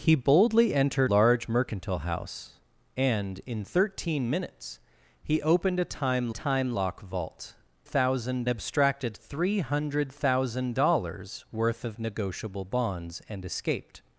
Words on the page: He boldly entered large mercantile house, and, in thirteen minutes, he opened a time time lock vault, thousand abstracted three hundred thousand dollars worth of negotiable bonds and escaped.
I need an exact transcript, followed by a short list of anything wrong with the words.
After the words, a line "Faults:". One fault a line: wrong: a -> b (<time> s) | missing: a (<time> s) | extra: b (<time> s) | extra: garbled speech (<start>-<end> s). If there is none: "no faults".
He boldly entered large mercantile house, and, in thirteen minutes, he opened a time time lock vault, thousand abstracted three hundred thousand dollars worth of negotiable bonds and escaped.
Faults:
no faults